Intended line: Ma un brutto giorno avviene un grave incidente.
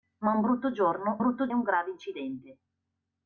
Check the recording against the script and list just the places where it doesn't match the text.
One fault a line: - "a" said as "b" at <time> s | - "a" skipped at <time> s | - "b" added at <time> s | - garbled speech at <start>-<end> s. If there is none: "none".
- "avviene" said as "brutto" at 1.2 s